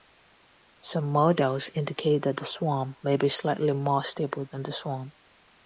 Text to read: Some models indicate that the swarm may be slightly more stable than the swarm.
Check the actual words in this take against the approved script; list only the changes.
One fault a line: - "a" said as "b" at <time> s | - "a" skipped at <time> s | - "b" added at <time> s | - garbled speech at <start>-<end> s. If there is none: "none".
none